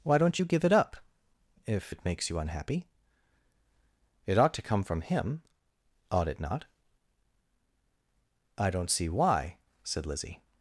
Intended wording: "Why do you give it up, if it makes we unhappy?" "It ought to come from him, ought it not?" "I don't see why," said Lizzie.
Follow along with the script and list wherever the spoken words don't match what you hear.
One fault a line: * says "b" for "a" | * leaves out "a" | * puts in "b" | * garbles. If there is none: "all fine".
* says "don't" for "do"
* says "you" for "we"